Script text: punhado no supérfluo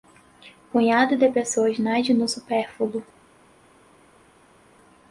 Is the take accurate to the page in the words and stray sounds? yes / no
no